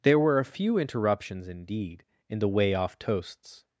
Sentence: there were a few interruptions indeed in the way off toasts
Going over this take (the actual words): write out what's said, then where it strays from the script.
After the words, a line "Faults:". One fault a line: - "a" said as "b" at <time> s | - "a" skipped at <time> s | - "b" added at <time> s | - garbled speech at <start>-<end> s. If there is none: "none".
there were a few interruptions indeed in the way off toasts
Faults:
none